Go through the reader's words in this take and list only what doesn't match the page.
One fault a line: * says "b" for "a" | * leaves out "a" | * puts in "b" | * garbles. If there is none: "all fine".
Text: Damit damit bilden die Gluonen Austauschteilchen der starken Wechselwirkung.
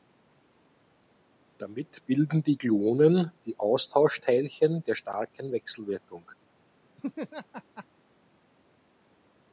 * leaves out "damit"
* puts in "die"